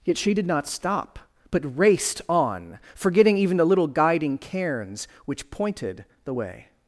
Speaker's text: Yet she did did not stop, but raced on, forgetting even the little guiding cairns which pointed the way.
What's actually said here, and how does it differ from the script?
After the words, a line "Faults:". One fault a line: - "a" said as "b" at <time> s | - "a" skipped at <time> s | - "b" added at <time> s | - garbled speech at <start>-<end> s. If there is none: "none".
Yet she did not stop, but raced on, forgetting even the little guiding cairns which pointed the way.
Faults:
- "did" skipped at 0.5 s